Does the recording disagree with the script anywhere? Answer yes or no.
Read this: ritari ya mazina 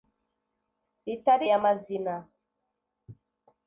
no